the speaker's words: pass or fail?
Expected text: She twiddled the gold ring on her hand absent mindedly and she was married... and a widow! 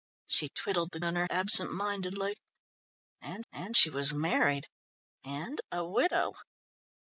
fail